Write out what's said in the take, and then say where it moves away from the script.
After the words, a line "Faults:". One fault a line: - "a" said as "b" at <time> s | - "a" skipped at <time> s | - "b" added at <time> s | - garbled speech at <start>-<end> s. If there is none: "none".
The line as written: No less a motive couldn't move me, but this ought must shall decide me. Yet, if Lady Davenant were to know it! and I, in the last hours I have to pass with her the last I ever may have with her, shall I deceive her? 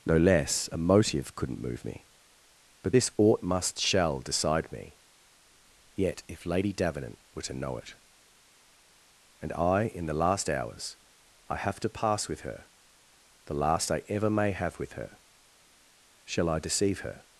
No less a motive couldn't move me, but this ought must shall decide me. Yet, if Lady Davenant were to know it! and I, in the last hours I have to pass with her the last I ever may have with her, shall I deceive her?
Faults:
none